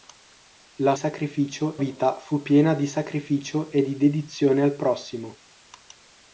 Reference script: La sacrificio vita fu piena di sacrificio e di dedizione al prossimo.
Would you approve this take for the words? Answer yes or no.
yes